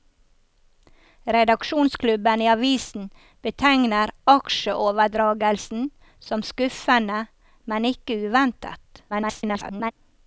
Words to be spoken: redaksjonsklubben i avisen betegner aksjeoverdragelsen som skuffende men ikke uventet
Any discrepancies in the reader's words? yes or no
yes